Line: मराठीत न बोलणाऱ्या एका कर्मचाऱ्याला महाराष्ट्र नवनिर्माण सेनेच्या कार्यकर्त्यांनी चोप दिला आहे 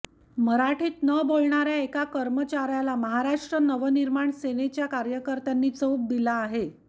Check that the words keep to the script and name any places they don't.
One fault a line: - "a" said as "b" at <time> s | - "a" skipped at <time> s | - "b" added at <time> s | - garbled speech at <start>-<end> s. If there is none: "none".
none